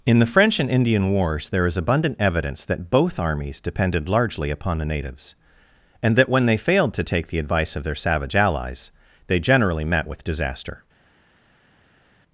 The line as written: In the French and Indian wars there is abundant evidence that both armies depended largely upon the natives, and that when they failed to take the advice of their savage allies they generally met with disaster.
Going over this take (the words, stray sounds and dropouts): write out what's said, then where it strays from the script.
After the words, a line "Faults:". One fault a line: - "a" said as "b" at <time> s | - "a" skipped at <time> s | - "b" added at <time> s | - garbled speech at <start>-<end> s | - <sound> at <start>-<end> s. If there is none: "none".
In the French and Indian wars there is abundant evidence that both armies depended largely upon the natives, and that when they failed to take the advice of their savage allies they generally met with disaster.
Faults:
none